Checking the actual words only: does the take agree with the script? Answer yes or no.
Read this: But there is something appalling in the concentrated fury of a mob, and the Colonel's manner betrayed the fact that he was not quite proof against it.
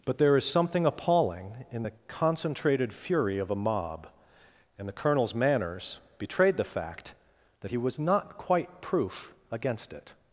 no